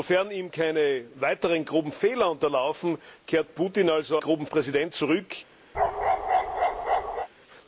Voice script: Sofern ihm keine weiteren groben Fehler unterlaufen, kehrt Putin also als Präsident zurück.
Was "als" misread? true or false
true